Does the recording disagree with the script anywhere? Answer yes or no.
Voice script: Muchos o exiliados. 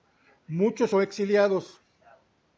no